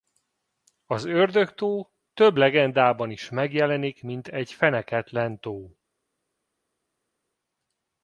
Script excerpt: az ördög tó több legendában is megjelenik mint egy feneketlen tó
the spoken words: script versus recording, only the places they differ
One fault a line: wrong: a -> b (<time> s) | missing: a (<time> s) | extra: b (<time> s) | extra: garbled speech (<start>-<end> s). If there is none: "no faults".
no faults